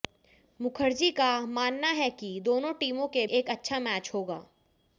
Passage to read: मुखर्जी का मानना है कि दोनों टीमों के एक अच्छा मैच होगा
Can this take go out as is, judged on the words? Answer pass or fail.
pass